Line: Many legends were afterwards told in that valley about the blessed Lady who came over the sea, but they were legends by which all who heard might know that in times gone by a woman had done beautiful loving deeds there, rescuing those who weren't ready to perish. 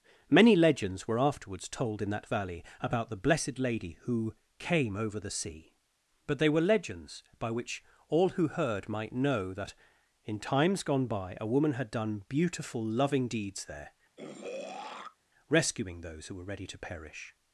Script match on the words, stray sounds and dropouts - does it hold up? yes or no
no